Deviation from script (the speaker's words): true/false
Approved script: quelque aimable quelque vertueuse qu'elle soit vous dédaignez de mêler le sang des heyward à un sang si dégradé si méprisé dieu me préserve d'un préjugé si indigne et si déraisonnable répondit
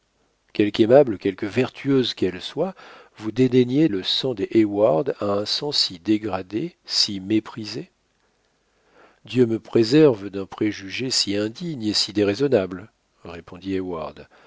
true